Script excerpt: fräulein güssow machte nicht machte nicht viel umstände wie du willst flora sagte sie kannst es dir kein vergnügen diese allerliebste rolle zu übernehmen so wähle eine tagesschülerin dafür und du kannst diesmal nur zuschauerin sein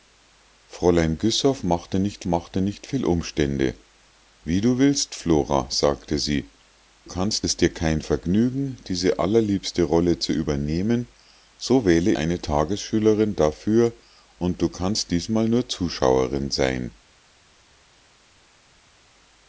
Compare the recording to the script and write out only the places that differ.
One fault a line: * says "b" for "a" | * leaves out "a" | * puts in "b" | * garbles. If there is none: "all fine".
all fine